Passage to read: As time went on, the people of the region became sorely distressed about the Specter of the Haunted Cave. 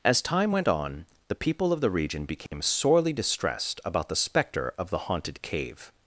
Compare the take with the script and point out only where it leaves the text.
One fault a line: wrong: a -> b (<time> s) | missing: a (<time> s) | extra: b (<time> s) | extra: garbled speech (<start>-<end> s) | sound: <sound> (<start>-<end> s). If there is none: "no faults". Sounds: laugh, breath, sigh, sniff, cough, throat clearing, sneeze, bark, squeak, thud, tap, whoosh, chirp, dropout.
sound: dropout (2.5-2.5 s)